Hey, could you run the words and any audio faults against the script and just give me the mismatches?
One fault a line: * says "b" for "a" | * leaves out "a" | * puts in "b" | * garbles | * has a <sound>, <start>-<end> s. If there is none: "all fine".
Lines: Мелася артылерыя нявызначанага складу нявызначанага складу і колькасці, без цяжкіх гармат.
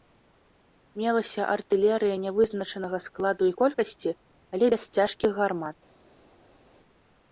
* leaves out "нявызначанага складу"
* puts in "але"